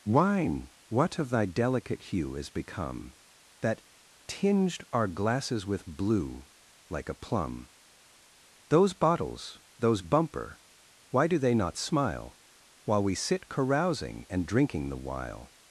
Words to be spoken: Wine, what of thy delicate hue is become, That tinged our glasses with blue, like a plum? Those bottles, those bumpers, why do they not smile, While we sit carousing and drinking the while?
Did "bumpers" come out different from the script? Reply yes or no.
yes